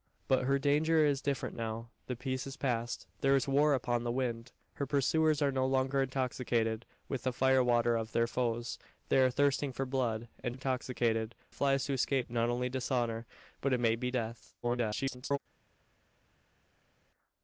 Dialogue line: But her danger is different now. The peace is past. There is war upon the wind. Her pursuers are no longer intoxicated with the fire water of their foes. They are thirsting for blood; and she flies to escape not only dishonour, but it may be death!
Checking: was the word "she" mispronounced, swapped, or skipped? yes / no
yes